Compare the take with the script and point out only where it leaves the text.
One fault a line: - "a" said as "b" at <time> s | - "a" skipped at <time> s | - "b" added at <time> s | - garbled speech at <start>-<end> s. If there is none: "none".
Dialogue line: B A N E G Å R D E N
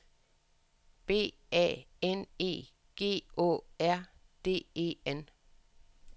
none